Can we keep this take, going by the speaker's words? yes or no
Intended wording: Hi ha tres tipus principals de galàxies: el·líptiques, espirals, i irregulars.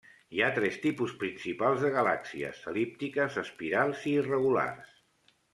yes